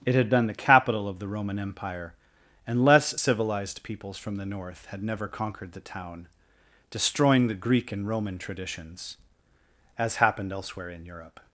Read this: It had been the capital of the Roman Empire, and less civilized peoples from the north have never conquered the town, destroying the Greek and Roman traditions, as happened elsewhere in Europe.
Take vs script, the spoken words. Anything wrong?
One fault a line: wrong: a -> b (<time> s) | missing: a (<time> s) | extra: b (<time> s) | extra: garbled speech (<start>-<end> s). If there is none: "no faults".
wrong: have -> had (4.9 s)